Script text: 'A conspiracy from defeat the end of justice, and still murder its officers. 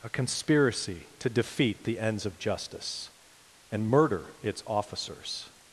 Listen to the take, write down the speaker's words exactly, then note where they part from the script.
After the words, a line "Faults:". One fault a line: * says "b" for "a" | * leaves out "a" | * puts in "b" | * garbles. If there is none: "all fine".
'A conspiracy to defeat the ends of justice, and murder its officers.
Faults:
* says "to" for "from"
* says "ends" for "end"
* leaves out "still"